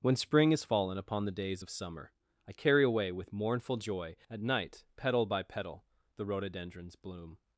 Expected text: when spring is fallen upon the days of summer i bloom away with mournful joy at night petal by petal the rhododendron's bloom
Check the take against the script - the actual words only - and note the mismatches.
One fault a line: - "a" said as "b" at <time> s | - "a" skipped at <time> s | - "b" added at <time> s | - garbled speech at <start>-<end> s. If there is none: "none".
- "bloom" said as "carry" at 2.5 s